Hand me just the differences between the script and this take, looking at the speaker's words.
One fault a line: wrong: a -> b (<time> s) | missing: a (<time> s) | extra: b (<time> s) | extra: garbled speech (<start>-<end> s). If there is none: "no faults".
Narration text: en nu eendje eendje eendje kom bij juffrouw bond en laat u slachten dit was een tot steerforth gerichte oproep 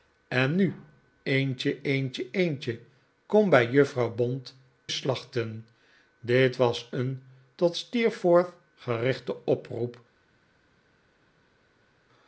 missing: en laat u (4.6 s)